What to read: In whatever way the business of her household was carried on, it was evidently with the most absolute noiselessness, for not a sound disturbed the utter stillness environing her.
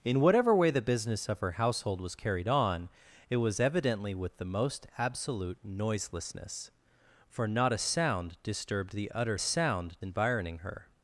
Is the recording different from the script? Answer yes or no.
yes